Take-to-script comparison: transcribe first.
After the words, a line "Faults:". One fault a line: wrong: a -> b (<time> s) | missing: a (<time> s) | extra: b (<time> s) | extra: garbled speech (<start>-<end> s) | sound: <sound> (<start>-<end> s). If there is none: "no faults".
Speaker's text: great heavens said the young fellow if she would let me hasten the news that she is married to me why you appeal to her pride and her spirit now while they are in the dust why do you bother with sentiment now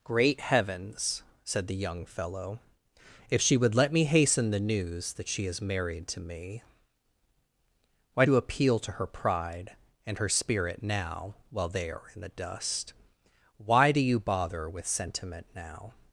great heavens said the young fellow if she would let me hasten the news that she is married to me why you appeal to her pride and her spirit now while they are in the dust why do you bother with sentiment now
Faults:
no faults